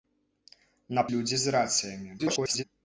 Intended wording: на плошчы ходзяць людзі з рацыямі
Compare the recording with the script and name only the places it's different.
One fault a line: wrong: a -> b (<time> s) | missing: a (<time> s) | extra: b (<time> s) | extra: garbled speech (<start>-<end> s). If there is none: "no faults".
missing: плошчы ходзяць (1.0 s)
extra: garbled speech (2.2-2.6 s)